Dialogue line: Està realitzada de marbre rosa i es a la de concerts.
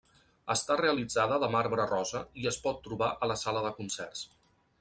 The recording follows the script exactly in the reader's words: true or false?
false